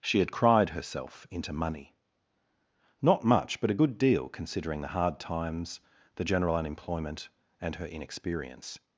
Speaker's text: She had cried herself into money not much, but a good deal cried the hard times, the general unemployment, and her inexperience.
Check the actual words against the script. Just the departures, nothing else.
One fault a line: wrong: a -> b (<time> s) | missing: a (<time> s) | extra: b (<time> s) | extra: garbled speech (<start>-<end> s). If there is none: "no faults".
wrong: cried -> considering (4.3 s)